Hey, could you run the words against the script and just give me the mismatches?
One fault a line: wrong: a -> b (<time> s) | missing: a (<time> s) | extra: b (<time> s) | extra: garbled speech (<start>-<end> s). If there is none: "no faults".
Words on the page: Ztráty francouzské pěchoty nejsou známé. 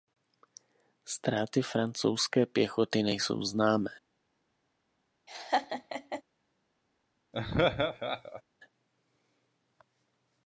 no faults